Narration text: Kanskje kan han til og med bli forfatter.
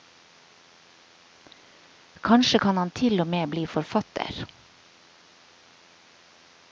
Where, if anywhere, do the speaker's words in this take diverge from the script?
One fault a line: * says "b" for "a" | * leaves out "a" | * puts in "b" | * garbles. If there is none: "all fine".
all fine